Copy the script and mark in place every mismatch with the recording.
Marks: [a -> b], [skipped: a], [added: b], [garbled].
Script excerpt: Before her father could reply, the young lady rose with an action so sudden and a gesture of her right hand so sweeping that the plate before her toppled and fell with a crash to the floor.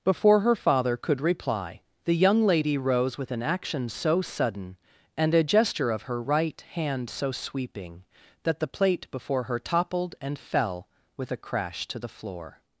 Before her father could reply, the young lady rose with an action so sudden and a gesture of her right hand so sweeping that the plate before her toppled and fell with a crash to the floor.